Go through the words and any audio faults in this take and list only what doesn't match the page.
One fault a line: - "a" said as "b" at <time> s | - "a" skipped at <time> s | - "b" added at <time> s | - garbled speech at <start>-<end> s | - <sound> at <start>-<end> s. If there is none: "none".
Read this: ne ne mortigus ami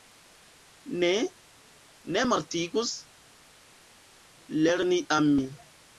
- "lerni" added at 4.6 s